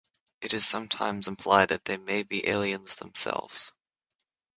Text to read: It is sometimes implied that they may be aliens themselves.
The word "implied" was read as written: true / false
true